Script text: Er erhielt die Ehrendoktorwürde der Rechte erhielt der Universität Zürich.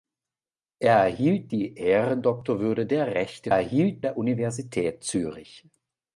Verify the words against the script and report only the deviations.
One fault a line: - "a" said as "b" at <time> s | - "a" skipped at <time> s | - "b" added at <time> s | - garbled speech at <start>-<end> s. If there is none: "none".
none